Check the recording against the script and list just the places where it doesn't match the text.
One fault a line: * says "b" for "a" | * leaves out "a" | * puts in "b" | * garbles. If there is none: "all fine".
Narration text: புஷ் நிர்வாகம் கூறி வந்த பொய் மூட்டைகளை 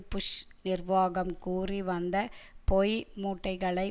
all fine